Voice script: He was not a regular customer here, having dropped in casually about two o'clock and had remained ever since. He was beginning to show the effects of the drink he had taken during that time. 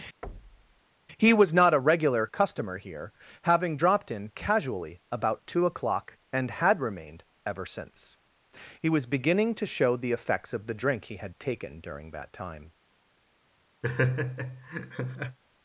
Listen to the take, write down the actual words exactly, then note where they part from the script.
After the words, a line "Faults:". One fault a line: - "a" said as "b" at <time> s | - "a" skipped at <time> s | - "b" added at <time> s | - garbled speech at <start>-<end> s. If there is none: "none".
He was not a regular customer here, having dropped in casually about two o'clock and had remained ever since. He was beginning to show the effects of the drink he had taken during that time.
Faults:
none